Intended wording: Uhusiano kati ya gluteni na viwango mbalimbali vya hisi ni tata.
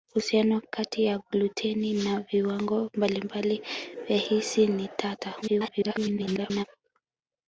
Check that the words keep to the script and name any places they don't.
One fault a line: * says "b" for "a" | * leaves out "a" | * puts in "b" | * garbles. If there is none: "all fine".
* garbles